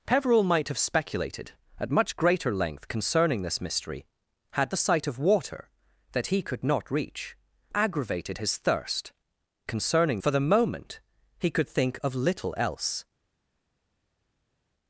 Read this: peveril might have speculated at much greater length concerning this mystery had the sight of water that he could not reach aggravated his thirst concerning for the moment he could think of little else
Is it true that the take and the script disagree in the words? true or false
false